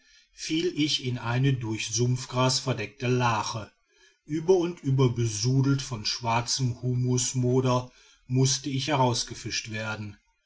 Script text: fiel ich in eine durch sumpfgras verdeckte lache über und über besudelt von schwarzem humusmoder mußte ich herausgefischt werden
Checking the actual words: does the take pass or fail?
pass